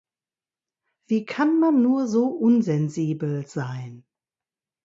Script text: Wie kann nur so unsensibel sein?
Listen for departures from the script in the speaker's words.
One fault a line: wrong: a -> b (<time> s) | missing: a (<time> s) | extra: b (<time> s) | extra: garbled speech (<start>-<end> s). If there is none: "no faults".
extra: man (1.6 s)